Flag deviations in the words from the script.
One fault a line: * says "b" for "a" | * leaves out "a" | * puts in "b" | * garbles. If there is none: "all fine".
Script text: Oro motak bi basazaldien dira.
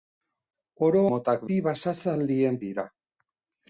all fine